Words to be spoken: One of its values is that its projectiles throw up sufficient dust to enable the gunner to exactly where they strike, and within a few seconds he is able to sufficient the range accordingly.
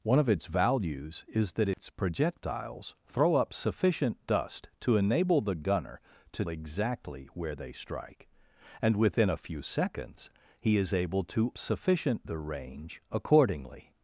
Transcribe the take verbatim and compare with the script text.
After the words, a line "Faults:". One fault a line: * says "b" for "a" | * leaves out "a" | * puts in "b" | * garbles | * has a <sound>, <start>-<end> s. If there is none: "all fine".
One of its values is that its projectiles throw up sufficient dust to enable the gunner to exactly where they strike, and within a few seconds he is able to sufficient the range accordingly.
Faults:
* has a dropout, 1.7-1.8 s